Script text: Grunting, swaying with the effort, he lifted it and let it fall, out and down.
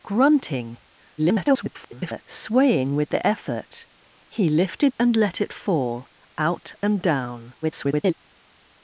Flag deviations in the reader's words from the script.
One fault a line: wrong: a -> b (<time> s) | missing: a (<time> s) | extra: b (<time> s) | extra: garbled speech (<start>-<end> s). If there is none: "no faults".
extra: garbled speech (1.2-2.2 s)
missing: it (4.9 s)
extra: garbled speech (7.6-8.1 s)